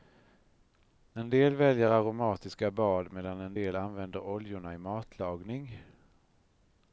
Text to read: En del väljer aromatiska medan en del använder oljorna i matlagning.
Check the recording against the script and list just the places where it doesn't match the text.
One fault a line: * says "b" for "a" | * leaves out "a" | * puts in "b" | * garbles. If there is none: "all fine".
* puts in "bad"